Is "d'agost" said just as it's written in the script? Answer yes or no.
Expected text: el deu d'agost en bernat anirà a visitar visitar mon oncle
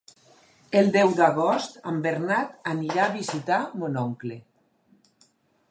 yes